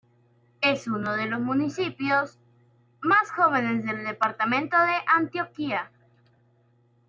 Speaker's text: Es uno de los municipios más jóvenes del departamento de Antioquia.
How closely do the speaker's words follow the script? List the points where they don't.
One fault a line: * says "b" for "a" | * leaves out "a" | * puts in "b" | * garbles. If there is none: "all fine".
all fine